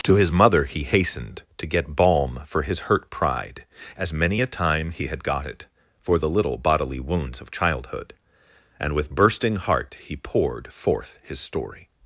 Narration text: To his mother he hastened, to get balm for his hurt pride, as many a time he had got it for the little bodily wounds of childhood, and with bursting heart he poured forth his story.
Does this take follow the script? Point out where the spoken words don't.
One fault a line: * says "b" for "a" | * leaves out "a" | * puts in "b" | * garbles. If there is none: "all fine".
all fine